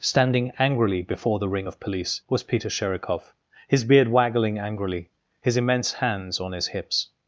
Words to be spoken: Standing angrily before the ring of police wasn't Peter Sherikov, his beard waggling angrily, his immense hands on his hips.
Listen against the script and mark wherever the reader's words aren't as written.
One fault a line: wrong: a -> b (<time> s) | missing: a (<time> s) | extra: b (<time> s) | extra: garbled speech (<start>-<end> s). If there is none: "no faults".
wrong: wasn't -> was (2.3 s)